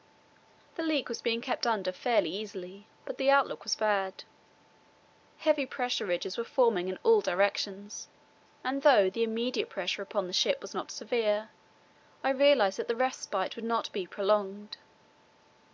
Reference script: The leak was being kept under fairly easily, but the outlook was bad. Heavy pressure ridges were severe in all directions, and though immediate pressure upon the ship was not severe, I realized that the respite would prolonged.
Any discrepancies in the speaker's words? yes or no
yes